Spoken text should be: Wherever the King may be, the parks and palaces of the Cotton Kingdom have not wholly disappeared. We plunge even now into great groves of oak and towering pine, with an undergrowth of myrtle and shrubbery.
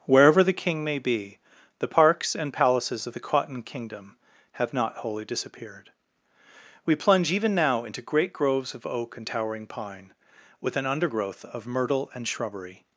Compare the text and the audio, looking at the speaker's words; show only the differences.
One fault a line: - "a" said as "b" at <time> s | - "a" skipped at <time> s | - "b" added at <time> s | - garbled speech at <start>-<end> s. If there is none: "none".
none